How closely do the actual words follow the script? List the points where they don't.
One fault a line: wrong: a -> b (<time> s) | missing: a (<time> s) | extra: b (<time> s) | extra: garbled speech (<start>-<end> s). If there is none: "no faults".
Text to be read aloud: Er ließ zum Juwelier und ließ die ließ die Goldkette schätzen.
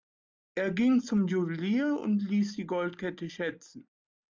wrong: ließ -> ging (0.7 s)
missing: ließ die (2.6 s)